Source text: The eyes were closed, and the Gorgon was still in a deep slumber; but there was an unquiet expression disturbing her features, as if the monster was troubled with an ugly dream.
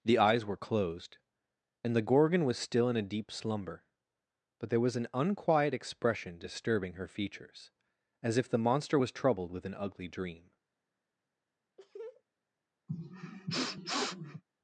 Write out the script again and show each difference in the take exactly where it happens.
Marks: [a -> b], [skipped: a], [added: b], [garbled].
The eyes were closed, and the Gorgon was still in a deep slumber; but there was an unquiet expression disturbing her features, as if the monster was troubled with an ugly dream.